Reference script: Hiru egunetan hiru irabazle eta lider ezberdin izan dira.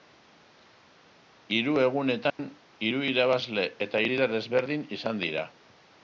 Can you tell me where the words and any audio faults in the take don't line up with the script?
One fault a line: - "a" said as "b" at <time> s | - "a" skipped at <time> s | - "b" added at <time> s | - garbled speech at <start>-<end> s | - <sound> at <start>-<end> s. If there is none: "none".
- dropout at 2.3-2.4 s